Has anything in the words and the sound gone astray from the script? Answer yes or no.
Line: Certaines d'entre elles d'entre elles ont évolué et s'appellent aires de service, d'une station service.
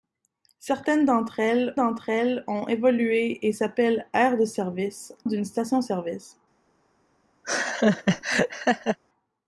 yes